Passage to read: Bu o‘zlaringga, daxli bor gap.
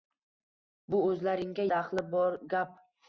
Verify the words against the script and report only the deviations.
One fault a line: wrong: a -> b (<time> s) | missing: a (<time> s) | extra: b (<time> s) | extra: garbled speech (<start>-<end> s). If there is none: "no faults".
no faults